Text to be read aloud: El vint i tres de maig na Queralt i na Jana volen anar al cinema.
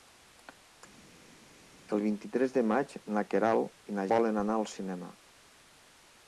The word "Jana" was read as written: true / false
false